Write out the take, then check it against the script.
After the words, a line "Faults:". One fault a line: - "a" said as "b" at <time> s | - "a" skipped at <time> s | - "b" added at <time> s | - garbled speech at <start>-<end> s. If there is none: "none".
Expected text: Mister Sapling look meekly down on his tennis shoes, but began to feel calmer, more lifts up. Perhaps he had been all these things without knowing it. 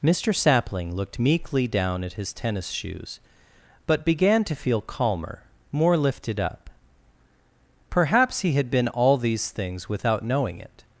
Mister Sapling looked meekly down at his tennis shoes, but began to feel calmer, more lifted up. Perhaps he had been all these things without knowing it.
Faults:
- "look" said as "looked" at 0.9 s
- "on" said as "at" at 2.0 s
- "lifts" said as "lifted" at 6.0 s